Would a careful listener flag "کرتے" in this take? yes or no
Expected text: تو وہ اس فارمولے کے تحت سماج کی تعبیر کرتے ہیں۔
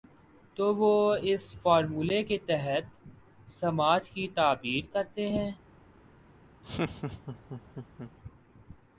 no